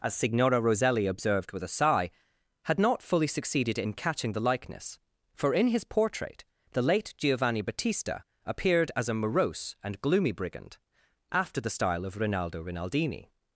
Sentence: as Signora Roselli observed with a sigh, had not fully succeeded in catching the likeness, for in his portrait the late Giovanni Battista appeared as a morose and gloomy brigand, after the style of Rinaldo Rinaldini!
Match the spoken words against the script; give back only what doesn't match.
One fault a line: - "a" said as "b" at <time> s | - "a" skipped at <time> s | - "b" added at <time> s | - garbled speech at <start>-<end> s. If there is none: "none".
none